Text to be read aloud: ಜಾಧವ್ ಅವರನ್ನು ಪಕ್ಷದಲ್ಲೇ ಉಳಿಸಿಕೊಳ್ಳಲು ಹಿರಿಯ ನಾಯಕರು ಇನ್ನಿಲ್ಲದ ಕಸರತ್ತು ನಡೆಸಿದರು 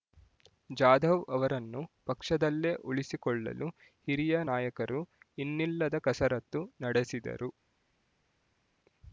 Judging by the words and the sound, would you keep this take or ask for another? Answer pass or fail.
pass